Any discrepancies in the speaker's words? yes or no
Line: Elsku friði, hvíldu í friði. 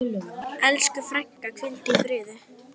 yes